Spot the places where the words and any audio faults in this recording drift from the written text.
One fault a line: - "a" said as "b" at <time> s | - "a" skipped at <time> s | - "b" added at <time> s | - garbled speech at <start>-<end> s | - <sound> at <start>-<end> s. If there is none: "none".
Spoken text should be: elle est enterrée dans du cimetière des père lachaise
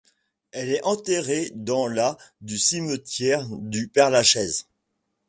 - "la" added at 1.9 s
- "des" said as "du" at 3.5 s